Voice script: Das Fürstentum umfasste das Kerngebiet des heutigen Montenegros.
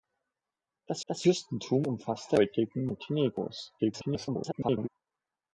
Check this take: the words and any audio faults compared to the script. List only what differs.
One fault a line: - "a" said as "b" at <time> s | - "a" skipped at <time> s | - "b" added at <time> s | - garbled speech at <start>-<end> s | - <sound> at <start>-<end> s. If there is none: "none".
- "das" added at 1.1 s
- "das Kerngebiet des" skipped at 2.4 s
- garbled speech at 3.8-4.9 s